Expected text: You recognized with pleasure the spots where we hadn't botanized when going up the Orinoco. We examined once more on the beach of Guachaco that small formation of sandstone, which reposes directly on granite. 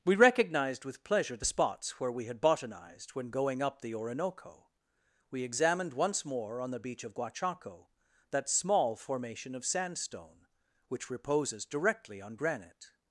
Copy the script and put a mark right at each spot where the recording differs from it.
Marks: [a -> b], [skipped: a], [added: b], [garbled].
[You -> We] recognized with pleasure the spots where we [hadn't -> had] botanized when going up the Orinoco. We examined once more on the beach of Guachaco that small formation of sandstone, which reposes directly on granite.